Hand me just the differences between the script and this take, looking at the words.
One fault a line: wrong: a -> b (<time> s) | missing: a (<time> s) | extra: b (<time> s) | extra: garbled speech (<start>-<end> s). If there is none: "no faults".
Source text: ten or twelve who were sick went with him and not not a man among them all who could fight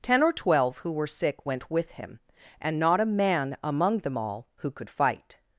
missing: not (3.0 s)